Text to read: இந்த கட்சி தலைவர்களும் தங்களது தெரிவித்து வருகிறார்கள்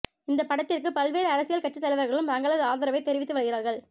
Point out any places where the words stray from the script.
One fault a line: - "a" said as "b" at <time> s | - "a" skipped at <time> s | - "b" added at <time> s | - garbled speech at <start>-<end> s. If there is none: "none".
- "படத்திற்கு பல்வேறு அரசியல்" added at 0.4 s
- "ஆதரவை" added at 2.6 s